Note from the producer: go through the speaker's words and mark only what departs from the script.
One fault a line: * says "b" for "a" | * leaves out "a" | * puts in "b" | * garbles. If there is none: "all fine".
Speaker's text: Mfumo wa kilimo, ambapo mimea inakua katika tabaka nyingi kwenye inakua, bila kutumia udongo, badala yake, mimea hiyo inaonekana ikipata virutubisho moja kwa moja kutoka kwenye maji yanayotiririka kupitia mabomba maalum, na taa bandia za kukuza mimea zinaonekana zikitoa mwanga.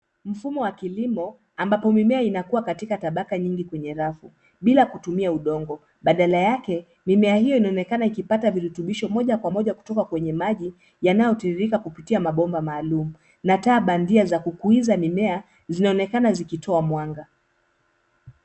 * says "rafu" for "inakua"